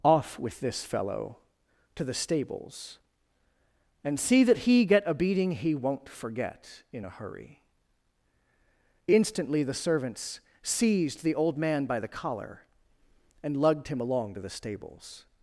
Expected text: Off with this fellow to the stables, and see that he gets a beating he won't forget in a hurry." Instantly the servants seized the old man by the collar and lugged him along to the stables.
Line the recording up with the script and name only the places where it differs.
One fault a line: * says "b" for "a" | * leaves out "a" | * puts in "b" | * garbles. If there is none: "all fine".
* says "get" for "gets"